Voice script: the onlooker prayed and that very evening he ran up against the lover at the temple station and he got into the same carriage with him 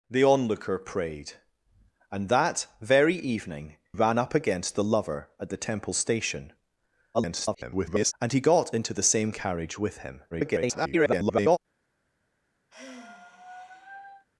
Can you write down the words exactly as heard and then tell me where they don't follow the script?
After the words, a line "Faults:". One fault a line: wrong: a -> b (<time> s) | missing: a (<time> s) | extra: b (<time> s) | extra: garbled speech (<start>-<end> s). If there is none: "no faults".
the onlooker prayed and that very evening ran up against the lover at the temple station [garbled] and he got into the same carriage with him [garbled]
Faults:
missing: he (3.8 s)
extra: garbled speech (7.1-8.1 s)
extra: garbled speech (10.3-11.6 s)